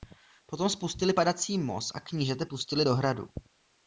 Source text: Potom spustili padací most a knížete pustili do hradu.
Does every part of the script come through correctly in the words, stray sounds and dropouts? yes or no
yes